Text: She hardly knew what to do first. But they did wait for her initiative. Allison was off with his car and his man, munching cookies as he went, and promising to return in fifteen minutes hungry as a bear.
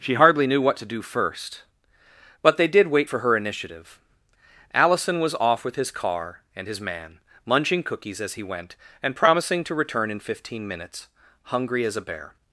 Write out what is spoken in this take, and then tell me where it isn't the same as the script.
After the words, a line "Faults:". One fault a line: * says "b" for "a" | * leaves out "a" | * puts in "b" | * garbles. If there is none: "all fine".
She hardly knew what to do first. But they did wait for her initiative. Allison was off with his car and his man, munching cookies as he went, and promising to return in fifteen minutes hungry as a bear.
Faults:
all fine